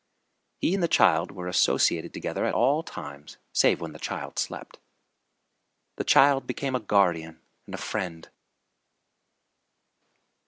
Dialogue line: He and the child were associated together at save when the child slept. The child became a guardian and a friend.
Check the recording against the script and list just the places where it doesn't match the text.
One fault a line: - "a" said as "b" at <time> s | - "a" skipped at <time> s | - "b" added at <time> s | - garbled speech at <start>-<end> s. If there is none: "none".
- "all times" added at 2.5 s